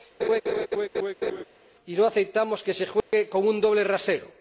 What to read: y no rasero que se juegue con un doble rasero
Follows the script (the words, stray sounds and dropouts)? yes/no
no